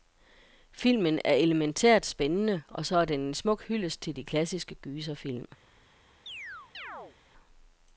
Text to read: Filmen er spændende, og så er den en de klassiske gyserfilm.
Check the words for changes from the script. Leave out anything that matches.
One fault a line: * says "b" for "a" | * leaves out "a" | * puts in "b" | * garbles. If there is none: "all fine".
* puts in "elementært"
* puts in "smuk hyldest til"